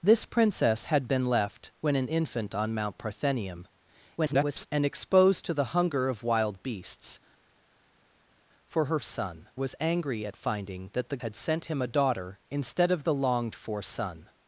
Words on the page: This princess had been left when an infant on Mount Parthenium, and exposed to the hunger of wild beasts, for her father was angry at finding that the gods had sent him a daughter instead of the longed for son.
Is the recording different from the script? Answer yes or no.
yes